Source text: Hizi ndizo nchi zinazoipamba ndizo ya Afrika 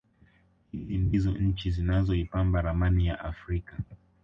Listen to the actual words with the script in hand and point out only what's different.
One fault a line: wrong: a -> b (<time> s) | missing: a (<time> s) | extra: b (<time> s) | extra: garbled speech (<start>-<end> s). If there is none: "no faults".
wrong: ndizo -> ramani (2.6 s)